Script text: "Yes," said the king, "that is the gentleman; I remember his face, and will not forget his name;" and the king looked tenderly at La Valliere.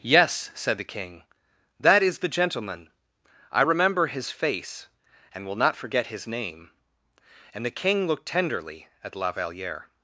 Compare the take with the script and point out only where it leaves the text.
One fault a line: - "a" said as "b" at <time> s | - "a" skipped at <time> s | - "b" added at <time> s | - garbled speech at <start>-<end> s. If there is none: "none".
none